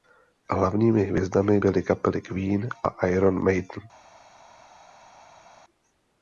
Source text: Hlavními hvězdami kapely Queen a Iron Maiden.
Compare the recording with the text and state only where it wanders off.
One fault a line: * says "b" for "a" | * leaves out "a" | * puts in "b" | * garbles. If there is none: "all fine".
* puts in "byly"